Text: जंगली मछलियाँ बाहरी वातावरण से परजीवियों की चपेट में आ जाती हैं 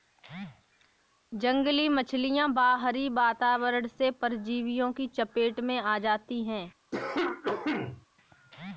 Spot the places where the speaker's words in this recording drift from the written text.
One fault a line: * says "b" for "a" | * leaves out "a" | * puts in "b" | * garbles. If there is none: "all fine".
all fine